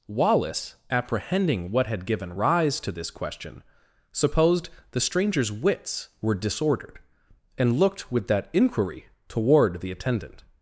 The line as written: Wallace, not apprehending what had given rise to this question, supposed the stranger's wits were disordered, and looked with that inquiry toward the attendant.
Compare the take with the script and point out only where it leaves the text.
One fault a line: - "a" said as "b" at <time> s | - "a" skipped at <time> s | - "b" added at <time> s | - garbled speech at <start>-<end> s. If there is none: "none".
- "not" skipped at 0.8 s